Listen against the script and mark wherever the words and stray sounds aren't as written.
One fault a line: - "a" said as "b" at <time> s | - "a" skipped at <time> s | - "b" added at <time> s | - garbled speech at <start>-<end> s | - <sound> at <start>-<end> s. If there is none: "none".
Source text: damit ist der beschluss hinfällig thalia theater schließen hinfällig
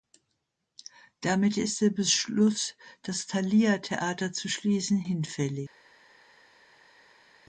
- "hinfällig" said as "das" at 3.0 s
- "zu" added at 4.3 s